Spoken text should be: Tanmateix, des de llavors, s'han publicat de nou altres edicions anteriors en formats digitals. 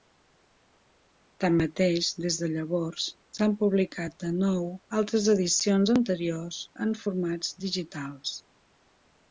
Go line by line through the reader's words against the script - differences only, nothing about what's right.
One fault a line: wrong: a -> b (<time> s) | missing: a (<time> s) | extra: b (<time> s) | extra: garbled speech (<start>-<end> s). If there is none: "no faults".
no faults